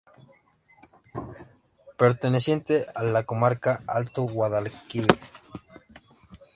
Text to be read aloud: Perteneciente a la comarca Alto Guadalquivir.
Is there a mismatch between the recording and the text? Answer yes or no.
no